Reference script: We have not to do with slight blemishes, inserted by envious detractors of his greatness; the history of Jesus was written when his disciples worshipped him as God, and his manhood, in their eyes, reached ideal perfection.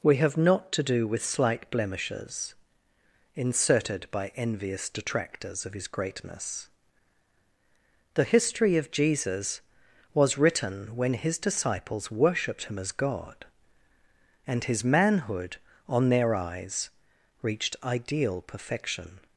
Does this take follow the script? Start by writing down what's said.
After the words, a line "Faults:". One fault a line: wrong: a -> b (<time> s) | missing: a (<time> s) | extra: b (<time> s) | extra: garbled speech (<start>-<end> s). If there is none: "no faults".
We have not to do with slight blemishes, inserted by envious detractors of his greatness; the history of Jesus was written when his disciples worshipped him as God, and his manhood, on their eyes, reached ideal perfection.
Faults:
wrong: in -> on (15.9 s)